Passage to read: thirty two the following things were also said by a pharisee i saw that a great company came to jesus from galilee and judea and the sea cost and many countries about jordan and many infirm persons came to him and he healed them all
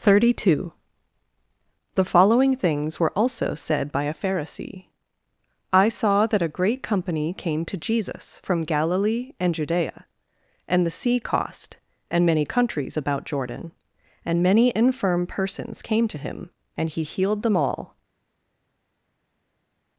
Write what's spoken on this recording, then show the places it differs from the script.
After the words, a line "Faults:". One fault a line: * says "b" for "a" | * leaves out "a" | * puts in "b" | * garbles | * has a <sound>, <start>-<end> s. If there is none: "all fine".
thirty two the following things were also said by a pharisee i saw that a great company came to jesus from galilee and judea and the sea cost and many countries about jordan and many infirm persons came to him and he healed them all
Faults:
all fine